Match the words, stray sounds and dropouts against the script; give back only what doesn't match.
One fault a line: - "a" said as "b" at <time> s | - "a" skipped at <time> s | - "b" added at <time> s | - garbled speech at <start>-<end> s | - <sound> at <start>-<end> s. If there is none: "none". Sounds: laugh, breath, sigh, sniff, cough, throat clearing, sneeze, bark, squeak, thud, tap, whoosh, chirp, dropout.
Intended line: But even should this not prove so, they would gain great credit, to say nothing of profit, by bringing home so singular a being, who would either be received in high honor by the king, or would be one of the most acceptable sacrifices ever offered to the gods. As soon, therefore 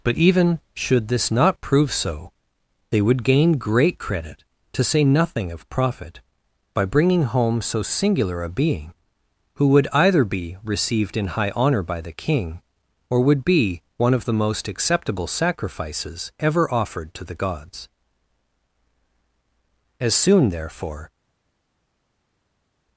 none